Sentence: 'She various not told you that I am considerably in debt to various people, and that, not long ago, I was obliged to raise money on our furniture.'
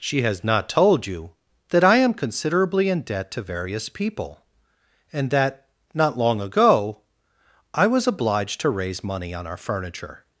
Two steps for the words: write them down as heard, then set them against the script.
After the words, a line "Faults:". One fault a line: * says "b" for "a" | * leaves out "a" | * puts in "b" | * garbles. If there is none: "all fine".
'She has not told you that I am considerably in debt to various people, and that, not long ago, I was obliged to raise money on our furniture.'
Faults:
* says "has" for "various"